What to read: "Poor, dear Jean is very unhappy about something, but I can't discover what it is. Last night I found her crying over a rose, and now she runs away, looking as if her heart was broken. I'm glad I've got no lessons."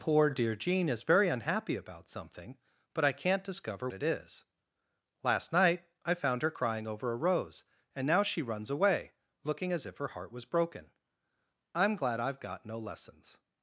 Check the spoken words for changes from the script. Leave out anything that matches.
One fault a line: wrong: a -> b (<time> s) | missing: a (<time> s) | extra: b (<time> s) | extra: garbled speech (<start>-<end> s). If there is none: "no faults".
missing: what (3.9 s)